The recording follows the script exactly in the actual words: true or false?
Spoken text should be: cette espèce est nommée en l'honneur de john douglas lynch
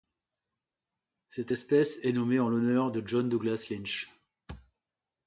true